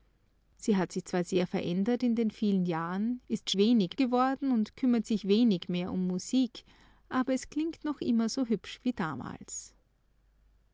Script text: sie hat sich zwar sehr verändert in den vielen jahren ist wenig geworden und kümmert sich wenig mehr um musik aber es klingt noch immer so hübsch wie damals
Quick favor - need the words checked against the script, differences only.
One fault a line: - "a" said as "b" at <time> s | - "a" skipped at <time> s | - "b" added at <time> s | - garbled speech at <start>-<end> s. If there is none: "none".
none